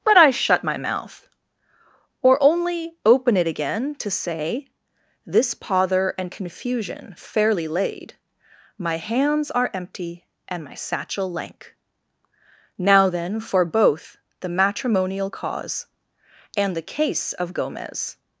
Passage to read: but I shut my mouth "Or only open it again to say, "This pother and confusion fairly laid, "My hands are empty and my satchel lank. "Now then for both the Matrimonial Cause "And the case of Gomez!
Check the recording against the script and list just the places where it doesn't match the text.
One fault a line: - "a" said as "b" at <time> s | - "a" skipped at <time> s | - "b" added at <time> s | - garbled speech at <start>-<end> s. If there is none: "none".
none